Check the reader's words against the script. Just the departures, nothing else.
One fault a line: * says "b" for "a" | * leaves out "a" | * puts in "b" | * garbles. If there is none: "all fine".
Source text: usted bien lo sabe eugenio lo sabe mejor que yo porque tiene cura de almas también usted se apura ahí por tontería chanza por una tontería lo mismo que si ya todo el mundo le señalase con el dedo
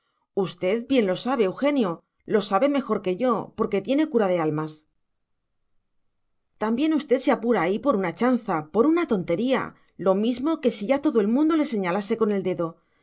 * says "una" for "tontería"